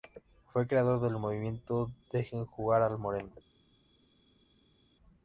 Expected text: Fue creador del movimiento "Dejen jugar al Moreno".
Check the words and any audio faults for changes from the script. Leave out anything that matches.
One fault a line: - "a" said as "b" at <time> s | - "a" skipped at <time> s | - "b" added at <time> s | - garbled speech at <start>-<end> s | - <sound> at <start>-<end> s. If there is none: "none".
none